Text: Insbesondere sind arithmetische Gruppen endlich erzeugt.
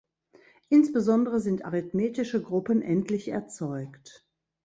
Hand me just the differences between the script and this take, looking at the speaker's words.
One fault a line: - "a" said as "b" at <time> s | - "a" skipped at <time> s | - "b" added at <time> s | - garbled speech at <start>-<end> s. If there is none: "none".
none